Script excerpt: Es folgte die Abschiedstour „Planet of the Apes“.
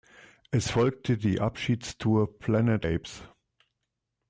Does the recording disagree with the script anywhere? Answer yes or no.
yes